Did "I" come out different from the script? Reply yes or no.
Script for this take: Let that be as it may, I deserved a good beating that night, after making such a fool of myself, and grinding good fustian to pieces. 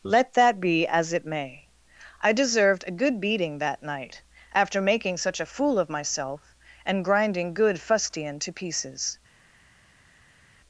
no